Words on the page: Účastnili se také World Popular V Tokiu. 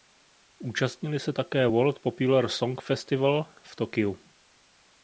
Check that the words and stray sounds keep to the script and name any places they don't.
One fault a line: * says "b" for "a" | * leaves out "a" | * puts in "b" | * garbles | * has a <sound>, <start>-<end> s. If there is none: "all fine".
* puts in "Song Festival"